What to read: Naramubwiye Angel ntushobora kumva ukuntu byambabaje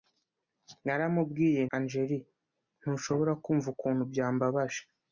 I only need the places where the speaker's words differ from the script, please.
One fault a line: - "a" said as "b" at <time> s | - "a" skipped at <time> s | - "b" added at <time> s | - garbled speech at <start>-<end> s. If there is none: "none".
none